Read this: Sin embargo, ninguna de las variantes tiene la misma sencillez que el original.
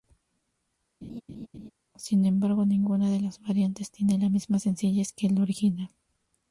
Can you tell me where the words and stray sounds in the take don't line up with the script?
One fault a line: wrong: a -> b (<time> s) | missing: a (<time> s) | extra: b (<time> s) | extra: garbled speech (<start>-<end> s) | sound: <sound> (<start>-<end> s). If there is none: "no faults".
sound: laugh (1.0-1.7 s)